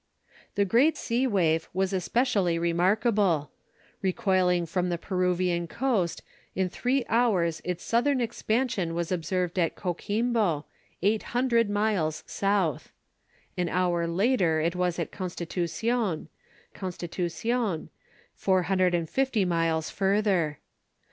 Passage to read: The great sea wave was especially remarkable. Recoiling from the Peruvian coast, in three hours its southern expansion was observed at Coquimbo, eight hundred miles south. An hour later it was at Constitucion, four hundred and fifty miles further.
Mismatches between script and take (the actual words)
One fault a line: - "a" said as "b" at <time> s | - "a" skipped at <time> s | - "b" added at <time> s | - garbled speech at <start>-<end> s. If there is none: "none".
- "Constitucion" added at 16.7 s